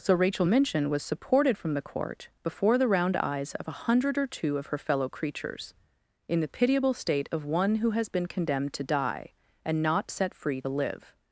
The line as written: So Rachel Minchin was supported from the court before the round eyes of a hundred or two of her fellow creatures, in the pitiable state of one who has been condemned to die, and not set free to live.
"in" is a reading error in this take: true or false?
false